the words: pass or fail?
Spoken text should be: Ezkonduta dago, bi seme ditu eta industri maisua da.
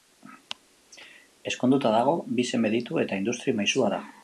pass